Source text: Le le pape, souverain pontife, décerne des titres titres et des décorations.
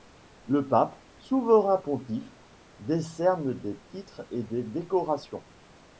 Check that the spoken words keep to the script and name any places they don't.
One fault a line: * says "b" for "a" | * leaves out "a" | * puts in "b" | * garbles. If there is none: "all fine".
* leaves out "le"
* leaves out "titres"